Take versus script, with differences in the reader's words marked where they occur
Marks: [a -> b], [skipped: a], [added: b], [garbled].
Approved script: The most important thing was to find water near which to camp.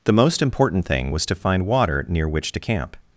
The most important thing was to find water near which to camp.